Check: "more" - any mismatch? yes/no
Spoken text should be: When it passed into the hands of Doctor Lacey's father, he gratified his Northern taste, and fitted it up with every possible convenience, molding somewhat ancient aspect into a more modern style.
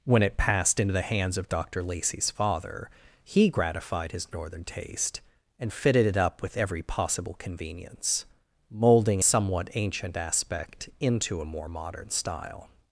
no